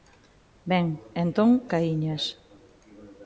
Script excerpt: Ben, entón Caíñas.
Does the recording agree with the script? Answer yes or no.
yes